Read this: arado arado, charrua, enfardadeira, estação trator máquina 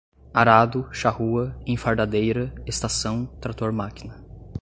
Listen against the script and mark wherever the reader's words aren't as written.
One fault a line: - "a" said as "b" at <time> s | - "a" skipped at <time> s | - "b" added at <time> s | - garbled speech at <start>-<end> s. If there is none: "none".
- "arado" skipped at 0.9 s